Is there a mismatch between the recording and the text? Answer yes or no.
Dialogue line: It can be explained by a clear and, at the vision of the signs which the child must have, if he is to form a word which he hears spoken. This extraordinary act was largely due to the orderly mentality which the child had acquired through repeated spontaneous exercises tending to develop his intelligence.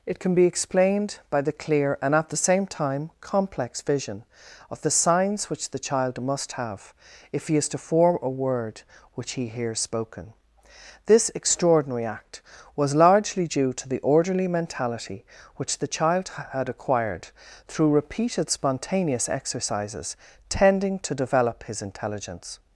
yes